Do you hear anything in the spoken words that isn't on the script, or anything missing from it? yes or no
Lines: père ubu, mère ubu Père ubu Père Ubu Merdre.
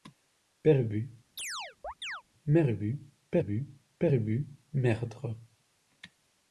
no